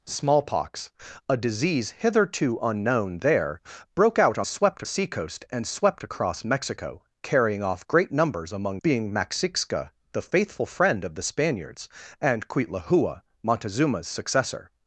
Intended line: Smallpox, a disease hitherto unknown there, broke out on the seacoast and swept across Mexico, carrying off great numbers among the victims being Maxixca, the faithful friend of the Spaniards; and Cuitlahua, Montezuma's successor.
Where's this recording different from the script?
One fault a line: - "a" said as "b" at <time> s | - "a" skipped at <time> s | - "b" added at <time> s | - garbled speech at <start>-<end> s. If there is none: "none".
- "the" said as "swept" at 4.4 s
- "the victims" skipped at 8.8 s